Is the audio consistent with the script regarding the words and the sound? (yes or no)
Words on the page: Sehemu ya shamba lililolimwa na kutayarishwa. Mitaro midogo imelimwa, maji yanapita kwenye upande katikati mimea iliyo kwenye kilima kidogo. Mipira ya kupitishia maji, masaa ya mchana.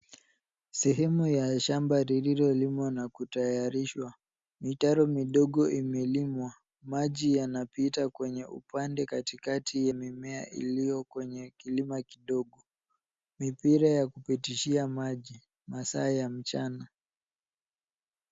yes